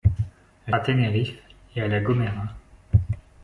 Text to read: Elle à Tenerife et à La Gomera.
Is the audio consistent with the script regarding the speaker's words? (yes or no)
yes